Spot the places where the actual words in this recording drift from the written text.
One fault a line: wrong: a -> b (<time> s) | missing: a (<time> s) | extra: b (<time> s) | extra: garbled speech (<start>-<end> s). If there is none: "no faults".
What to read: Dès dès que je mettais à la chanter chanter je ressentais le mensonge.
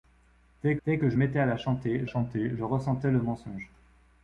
no faults